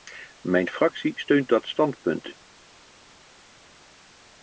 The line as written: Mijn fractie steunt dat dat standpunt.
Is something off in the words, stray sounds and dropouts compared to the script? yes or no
yes